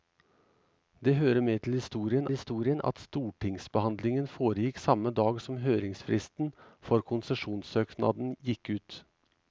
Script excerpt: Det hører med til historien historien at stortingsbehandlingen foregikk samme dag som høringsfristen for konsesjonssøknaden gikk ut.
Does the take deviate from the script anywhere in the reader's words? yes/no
no